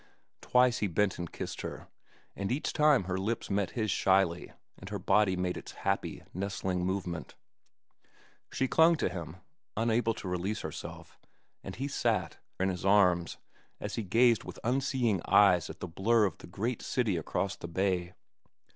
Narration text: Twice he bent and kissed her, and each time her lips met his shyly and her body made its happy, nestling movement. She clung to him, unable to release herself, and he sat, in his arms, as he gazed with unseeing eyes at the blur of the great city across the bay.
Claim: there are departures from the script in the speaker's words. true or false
false